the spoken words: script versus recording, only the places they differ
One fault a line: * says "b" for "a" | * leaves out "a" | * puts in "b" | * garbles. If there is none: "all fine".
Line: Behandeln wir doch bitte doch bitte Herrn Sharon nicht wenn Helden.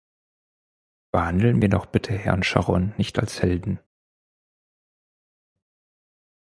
* leaves out "doch bitte"
* says "als" for "wenn"